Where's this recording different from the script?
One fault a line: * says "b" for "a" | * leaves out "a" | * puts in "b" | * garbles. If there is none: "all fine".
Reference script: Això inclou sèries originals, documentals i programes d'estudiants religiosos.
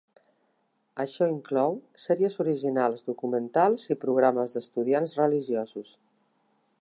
all fine